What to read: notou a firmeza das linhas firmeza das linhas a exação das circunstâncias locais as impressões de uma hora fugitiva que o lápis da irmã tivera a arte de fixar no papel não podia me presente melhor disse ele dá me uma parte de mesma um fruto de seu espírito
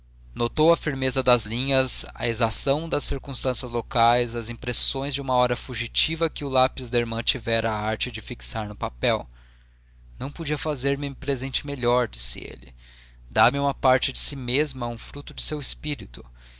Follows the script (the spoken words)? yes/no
no